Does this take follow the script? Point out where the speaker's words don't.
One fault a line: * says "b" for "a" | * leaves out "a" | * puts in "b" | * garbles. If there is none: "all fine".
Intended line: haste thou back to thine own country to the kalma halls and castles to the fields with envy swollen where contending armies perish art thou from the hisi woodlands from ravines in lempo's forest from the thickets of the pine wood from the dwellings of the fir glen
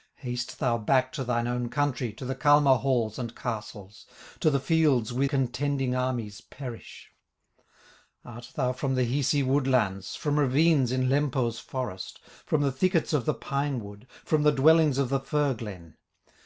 * leaves out "envy swollen where"